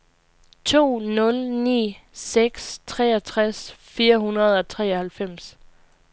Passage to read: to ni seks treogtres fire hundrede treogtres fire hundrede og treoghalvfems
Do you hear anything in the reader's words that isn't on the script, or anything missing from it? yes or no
yes